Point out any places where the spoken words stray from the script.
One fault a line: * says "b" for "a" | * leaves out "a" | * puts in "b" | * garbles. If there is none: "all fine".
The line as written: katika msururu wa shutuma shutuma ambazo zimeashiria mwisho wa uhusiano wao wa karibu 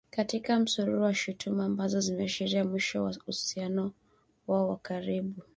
* leaves out "shutuma"